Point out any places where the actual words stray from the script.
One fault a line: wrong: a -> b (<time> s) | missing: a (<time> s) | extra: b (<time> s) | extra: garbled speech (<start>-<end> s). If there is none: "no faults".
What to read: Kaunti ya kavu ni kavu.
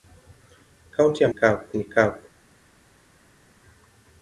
no faults